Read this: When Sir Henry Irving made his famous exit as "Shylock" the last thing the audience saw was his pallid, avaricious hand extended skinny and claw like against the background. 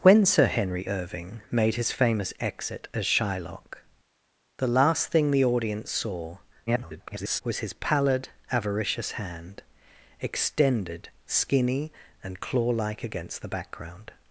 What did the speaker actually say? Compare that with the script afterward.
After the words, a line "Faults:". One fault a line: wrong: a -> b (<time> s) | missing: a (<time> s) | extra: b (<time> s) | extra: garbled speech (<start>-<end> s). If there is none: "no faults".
When Sir Henry Irving made his famous exit as "Shylock" the last thing the audience saw [garbled] was his pallid, avaricious hand extended skinny and claw like against the background.
Faults:
extra: garbled speech (6.7-7.4 s)